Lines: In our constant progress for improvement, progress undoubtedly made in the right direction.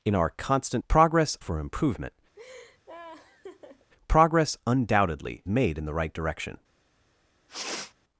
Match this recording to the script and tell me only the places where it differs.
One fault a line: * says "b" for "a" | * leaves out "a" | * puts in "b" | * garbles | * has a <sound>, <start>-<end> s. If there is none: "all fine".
* has a laugh, 2.3-3.9 s
* has a sniff, 7.5-7.9 s